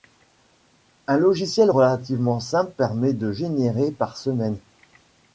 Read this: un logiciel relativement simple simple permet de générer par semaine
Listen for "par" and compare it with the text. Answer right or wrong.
right